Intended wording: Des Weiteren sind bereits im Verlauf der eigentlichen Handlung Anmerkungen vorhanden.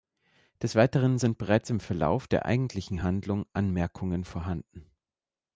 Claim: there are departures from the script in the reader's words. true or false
false